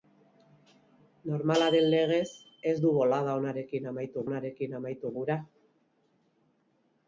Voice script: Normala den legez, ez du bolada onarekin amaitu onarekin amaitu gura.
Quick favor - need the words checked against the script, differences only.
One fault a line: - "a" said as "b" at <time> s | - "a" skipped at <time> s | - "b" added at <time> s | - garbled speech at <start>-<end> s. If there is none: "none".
none